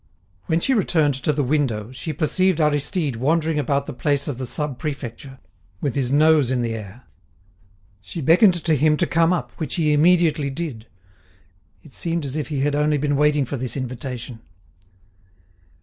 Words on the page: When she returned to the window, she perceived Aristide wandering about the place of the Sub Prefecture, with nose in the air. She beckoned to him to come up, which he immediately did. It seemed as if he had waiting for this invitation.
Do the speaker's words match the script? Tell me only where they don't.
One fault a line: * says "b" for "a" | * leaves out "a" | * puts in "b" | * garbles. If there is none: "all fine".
* puts in "his"
* puts in "only been"